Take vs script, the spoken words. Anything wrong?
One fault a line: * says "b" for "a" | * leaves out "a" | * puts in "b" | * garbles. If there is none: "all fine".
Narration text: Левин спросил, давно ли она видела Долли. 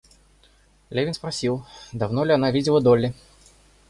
all fine